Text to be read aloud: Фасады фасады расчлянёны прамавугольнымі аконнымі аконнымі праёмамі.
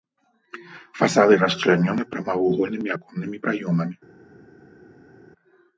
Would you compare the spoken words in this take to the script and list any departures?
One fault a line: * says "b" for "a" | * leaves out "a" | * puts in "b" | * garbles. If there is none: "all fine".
* leaves out "фасады"
* leaves out "аконнымі"